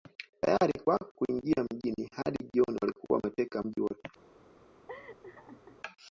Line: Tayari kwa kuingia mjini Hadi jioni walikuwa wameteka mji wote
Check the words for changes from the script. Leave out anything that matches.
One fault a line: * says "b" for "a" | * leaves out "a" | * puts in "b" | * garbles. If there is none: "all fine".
all fine